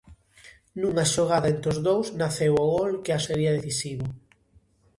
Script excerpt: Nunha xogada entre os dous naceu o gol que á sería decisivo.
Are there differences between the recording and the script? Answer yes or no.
no